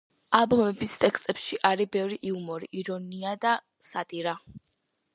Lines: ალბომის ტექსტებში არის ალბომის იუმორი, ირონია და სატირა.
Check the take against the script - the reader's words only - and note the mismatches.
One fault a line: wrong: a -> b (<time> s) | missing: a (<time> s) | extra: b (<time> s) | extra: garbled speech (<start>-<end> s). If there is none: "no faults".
wrong: ალბომის -> ბევრი (2.0 s)